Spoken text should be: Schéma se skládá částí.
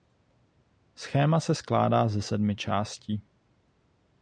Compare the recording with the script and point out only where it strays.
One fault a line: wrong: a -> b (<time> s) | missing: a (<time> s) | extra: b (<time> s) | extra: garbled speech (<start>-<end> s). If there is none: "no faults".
extra: ze sedmi (2.1 s)